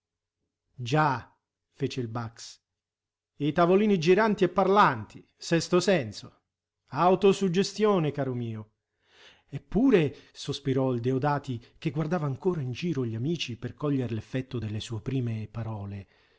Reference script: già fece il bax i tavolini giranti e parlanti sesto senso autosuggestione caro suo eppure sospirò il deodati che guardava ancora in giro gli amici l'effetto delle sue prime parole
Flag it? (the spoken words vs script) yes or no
yes